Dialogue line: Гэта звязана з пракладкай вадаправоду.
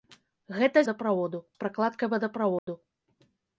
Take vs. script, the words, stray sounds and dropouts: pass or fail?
fail